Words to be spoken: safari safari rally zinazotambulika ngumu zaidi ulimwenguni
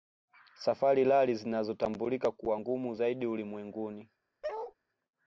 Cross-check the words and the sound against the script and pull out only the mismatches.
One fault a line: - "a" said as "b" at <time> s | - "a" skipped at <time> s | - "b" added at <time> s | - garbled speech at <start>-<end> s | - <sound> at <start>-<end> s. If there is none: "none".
- "safari" skipped at 1.0 s
- "kuwa" added at 2.3 s
- bark at 4.4-4.7 s